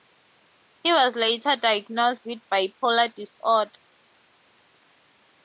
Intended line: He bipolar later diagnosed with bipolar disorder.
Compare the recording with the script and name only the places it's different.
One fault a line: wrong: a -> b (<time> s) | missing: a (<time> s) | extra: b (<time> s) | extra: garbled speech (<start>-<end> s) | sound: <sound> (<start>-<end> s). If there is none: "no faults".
wrong: bipolar -> was (0.9 s)